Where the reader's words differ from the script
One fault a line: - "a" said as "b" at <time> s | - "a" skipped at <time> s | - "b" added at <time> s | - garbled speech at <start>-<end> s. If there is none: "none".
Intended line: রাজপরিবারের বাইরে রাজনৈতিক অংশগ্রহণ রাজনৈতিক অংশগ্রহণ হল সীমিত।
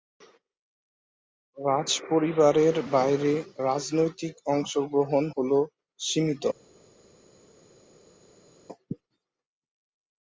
- "রাজনৈতিক অংশগ্রহণ" skipped at 5.2 s